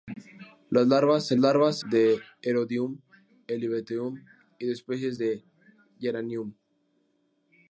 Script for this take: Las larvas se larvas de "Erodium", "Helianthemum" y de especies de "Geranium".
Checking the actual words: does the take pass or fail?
pass